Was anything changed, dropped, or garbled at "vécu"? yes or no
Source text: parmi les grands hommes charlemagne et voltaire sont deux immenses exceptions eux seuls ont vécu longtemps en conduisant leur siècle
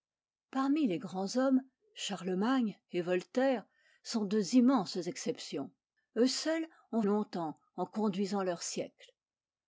yes